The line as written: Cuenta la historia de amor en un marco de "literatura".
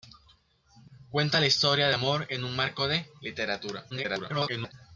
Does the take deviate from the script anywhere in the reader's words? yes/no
yes